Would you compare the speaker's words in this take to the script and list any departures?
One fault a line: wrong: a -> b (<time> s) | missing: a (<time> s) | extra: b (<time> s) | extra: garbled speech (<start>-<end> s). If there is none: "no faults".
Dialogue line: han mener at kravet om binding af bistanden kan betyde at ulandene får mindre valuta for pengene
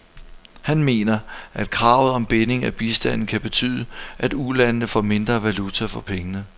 no faults